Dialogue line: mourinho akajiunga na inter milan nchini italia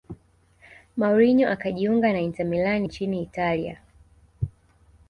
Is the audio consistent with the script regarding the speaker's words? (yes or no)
yes